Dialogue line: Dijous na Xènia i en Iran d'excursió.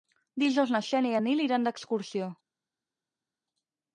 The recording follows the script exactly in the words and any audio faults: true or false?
false